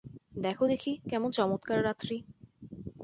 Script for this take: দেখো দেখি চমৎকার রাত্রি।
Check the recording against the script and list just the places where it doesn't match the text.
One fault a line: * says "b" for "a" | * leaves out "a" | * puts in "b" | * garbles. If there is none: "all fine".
* puts in "কেমন"